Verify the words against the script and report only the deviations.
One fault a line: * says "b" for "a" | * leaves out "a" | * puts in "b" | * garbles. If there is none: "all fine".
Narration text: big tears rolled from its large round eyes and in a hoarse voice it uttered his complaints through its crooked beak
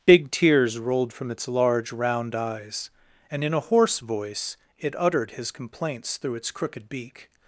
all fine